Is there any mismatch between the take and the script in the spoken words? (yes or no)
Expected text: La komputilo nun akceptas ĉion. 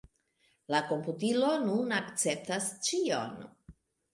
no